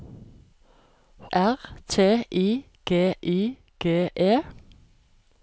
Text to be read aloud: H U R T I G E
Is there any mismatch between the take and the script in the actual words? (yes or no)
yes